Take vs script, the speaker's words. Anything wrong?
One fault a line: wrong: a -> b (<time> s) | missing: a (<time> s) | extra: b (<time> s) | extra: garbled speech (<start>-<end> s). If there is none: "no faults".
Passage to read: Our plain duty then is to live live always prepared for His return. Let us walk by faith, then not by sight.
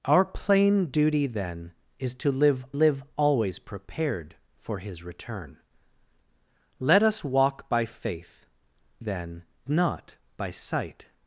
no faults